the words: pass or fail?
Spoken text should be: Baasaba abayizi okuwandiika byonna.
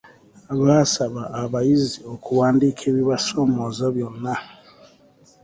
fail